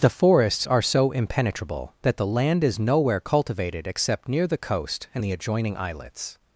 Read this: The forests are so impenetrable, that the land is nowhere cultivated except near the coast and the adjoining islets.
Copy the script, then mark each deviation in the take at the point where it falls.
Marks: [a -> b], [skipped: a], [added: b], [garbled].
The forests are so impenetrable, that the land is nowhere cultivated except near the coast and the adjoining islets.